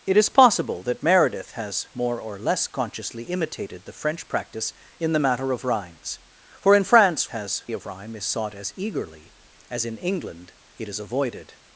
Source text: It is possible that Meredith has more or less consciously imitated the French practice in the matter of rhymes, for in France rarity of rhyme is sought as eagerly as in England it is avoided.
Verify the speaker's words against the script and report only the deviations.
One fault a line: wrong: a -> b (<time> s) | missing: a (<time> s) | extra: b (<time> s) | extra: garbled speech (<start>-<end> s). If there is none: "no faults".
wrong: rarity -> has (7.3 s)